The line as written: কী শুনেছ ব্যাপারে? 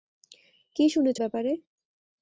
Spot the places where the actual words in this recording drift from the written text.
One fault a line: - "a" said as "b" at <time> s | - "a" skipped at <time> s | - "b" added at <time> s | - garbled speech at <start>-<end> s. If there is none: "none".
none